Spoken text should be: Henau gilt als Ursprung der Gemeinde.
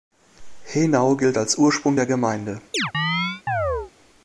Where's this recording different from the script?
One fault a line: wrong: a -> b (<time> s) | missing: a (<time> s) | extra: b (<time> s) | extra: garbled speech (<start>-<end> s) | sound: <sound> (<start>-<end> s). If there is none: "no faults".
sound: chirp (2.7-3.9 s)